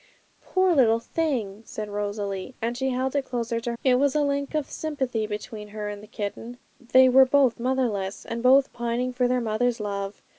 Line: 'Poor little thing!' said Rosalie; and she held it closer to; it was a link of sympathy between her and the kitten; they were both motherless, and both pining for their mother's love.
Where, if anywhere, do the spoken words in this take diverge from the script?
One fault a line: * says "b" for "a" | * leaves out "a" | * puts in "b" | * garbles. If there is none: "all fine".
all fine